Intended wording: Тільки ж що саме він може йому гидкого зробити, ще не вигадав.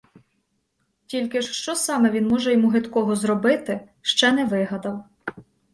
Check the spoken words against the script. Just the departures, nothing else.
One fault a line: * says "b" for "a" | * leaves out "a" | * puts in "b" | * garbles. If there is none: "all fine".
all fine